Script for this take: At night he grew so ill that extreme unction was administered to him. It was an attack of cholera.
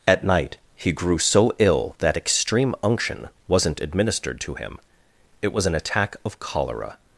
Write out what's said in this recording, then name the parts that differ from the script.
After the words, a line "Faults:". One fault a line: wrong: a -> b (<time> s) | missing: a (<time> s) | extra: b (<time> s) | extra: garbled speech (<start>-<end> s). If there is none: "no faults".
At night he grew so ill that extreme unction wasn't administered to him. It was an attack of cholera.
Faults:
wrong: was -> wasn't (3.5 s)